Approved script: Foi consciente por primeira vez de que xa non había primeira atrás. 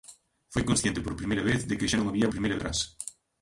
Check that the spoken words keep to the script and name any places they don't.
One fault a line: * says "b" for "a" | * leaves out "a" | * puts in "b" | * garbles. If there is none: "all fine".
all fine